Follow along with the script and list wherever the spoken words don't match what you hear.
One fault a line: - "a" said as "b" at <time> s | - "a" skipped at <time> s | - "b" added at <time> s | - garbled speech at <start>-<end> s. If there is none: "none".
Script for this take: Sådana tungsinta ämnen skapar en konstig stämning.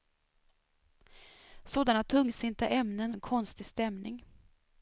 - "skapar" skipped at 3.1 s